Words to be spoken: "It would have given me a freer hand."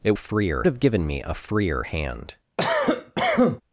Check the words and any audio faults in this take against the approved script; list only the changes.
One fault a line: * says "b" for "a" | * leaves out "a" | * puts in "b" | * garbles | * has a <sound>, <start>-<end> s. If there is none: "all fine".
* says "freer" for "would"
* has a cough, 2.6-3.6 s